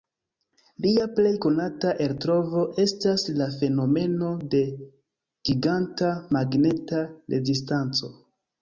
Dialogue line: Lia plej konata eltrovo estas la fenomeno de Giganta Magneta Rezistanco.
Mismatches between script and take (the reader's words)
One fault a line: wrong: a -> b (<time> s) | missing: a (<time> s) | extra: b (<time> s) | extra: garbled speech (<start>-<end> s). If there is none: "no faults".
no faults